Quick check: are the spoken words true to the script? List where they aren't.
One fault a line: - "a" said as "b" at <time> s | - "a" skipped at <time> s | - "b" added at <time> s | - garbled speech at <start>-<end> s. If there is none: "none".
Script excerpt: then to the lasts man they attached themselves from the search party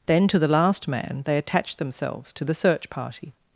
- "lasts" said as "last" at 0.5 s
- "from" said as "to" at 2.3 s